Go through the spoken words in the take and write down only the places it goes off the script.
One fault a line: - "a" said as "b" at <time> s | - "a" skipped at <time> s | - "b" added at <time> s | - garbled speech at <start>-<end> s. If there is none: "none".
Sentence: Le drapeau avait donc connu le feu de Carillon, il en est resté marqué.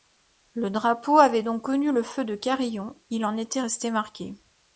- "est" said as "était" at 3.4 s